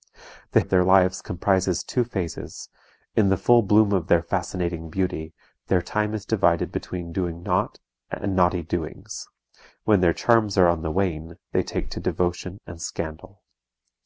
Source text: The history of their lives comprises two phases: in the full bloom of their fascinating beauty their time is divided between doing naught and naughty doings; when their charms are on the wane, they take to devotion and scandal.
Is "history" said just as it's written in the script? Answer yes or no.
no